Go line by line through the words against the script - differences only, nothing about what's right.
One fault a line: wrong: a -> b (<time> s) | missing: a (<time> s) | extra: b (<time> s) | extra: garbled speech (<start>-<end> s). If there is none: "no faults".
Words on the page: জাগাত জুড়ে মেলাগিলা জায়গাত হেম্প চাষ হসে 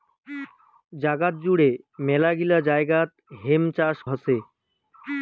no faults